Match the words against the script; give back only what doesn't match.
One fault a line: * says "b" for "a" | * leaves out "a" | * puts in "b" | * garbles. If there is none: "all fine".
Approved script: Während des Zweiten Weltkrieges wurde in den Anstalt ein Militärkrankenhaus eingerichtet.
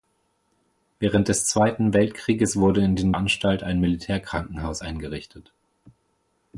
all fine